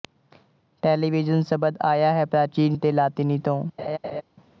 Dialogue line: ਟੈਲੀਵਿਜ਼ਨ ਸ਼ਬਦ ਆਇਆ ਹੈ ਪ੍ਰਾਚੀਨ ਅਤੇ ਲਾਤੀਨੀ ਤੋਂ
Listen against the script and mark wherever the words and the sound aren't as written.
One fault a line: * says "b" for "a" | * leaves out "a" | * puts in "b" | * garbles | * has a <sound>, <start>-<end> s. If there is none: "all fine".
* has a laugh, 3.8-4.2 s